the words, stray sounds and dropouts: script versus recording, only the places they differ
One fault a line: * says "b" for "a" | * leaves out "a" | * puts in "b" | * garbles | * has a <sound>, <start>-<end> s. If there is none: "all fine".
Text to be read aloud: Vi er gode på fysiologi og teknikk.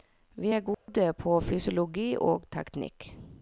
* has a dropout, 0.7-0.9 s